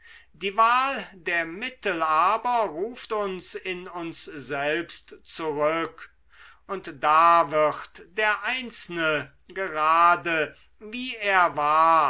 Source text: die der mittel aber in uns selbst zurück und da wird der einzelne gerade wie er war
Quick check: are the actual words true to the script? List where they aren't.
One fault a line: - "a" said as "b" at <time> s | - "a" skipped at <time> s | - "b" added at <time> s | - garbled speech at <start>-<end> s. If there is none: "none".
- "wahl" added at 0.6 s
- "ruft uns" added at 2.7 s